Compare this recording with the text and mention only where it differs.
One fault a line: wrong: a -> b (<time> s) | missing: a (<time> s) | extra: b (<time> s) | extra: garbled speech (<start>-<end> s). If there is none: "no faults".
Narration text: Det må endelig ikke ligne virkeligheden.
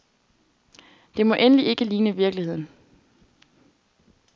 no faults